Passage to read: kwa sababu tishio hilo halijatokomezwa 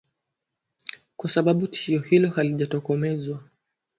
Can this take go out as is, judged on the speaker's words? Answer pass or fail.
pass